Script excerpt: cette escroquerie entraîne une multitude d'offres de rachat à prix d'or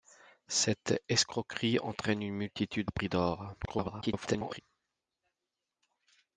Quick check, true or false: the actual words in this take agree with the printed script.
false